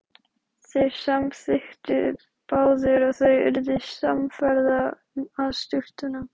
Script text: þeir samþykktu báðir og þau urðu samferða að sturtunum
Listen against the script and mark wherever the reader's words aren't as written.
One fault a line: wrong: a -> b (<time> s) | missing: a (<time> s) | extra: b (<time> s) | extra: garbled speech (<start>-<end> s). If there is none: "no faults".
no faults